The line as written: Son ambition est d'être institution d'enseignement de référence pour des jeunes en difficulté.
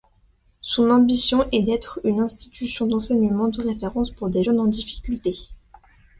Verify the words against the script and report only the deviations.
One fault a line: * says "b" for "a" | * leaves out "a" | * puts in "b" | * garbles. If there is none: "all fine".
* puts in "une"